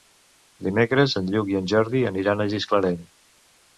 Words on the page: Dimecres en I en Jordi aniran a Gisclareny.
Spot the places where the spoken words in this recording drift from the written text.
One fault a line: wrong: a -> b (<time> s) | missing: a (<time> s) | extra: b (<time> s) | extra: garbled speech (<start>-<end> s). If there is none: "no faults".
extra: Lluc (1.4 s)